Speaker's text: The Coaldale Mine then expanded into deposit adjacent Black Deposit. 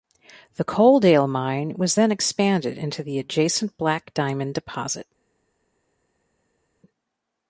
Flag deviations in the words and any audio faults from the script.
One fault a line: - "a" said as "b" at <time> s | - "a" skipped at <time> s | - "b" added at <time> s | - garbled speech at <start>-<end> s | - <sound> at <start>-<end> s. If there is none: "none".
- "was" added at 1.8 s
- "deposit" said as "the" at 3.0 s
- "Diamond" added at 4.1 s